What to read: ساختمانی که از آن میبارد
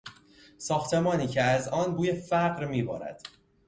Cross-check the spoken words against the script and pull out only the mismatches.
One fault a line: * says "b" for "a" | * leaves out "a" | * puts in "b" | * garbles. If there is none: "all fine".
* puts in "بوی فقر"